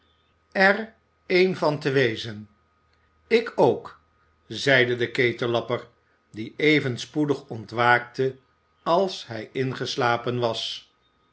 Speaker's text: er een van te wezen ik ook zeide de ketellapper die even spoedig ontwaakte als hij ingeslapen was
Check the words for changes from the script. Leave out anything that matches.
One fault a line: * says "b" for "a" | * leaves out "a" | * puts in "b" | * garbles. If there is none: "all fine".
all fine